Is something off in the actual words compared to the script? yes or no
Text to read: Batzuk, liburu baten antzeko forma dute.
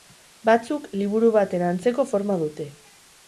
no